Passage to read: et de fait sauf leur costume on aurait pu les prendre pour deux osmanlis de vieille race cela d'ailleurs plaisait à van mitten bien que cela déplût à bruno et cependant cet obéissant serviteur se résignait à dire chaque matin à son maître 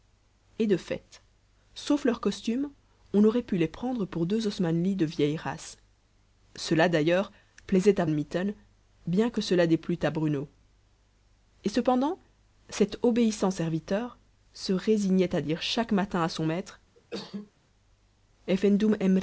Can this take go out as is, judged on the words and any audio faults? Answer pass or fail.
fail